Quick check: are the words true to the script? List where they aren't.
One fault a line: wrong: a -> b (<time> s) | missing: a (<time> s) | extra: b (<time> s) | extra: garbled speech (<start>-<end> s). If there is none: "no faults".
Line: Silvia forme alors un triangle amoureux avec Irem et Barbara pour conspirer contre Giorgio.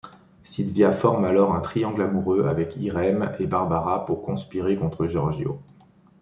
no faults